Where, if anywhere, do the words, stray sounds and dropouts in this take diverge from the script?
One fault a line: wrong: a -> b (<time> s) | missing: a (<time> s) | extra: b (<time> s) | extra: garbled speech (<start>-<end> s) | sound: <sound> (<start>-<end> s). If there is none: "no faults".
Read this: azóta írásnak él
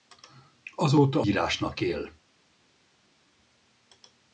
no faults